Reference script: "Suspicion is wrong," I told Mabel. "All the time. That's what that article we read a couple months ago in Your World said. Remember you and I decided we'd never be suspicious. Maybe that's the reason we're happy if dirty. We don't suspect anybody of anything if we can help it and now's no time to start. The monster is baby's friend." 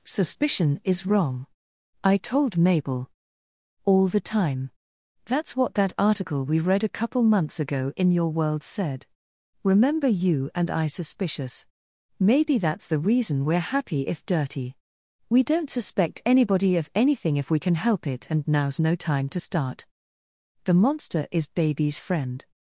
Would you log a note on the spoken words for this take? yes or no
yes